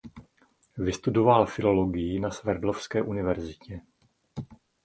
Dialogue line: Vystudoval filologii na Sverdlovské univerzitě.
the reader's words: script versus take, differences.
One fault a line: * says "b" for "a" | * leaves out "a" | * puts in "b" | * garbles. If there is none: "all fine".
all fine